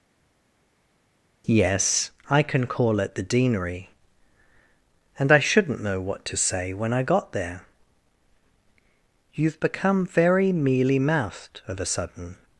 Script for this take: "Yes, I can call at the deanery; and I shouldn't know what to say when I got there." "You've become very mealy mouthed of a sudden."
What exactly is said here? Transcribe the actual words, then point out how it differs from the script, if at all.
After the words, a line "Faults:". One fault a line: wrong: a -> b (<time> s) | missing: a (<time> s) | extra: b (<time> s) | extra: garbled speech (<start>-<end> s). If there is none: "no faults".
"Yes, I can call at the deanery; and I shouldn't know what to say when I got there." "You've become very mealy mouthed of a sudden."
Faults:
no faults